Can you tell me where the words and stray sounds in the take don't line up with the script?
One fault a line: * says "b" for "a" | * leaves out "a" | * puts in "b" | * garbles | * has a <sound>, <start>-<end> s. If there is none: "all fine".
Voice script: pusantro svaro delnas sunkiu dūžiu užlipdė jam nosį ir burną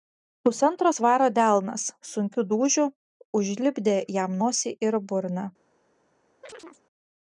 * has a chirp, 6.4-6.8 s